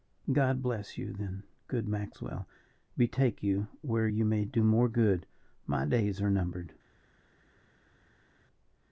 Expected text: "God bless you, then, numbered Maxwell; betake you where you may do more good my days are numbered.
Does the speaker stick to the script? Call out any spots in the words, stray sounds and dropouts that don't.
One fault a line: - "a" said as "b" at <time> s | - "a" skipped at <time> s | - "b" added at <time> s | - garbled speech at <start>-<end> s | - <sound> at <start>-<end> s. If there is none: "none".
- "numbered" said as "good" at 1.7 s